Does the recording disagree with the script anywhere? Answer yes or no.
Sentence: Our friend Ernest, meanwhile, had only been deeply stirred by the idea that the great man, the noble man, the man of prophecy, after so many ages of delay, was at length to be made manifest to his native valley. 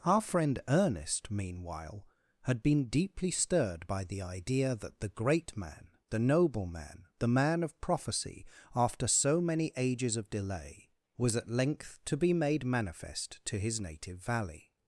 yes